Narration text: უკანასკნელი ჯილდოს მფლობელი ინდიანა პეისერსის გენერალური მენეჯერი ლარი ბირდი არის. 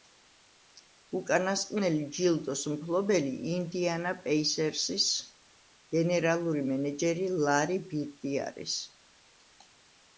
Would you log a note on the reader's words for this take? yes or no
no